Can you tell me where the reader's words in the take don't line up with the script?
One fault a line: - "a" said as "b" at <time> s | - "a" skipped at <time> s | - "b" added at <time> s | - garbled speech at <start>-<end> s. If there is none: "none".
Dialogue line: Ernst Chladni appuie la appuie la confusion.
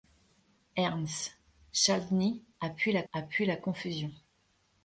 none